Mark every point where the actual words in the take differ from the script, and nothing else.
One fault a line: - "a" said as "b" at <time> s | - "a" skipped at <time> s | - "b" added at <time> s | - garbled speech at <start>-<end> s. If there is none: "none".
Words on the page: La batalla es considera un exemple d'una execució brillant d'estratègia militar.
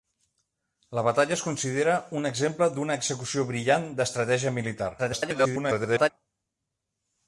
- garbled speech at 5.0-6.1 s